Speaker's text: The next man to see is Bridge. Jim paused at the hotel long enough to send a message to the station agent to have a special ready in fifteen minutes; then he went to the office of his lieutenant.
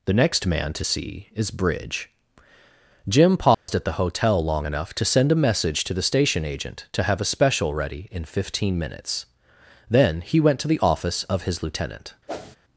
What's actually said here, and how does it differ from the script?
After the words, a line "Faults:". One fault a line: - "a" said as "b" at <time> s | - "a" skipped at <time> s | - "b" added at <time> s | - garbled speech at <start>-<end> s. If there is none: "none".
The next man to see is Bridge. Jim paused at the hotel long enough to send a message to the station agent to have a special ready in fifteen minutes; then he went to the office of his lieutenant.
Faults:
none